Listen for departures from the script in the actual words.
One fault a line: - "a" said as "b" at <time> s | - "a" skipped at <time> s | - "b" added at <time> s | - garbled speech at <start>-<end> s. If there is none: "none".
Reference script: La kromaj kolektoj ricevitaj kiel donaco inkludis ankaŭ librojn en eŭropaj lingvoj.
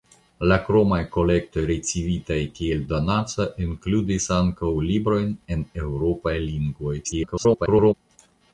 - garbled speech at 7.0-7.9 s